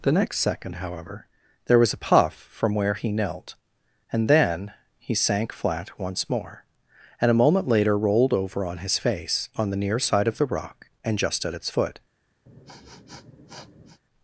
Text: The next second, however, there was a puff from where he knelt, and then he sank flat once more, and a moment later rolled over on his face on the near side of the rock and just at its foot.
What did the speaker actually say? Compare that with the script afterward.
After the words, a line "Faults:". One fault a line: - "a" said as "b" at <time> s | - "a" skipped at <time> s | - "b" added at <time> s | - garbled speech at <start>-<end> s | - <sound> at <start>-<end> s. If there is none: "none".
The next second, however, there was a puff from where he knelt, and then he sank flat once more, and a moment later rolled over on his face on the near side of the rock and just at its foot.
Faults:
- sniff at 12.5-14.0 s